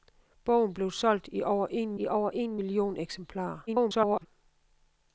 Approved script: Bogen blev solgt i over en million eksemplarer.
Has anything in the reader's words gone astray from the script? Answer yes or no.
yes